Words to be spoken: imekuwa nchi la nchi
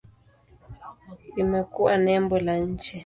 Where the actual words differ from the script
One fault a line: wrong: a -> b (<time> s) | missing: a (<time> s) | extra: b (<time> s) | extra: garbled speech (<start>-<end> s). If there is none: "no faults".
wrong: nchi -> nembo (2.0 s)